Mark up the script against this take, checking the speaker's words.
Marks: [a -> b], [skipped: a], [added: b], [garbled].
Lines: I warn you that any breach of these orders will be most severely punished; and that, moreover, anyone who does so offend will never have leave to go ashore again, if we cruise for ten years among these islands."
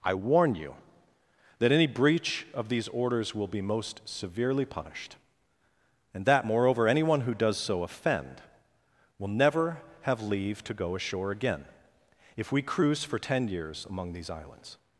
I warn you that any breach of these orders will be most severely punished; and that, moreover, anyone who does so offend will never have leave to go ashore again, if we cruise for ten years among these islands."